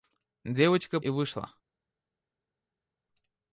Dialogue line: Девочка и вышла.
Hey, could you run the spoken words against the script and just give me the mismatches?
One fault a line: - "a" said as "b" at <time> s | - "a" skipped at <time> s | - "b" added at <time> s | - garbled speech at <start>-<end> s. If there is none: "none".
none